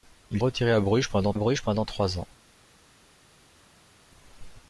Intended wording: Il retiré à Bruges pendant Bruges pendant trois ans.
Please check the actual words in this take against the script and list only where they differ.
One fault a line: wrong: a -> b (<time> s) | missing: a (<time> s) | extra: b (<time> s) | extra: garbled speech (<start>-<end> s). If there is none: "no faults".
no faults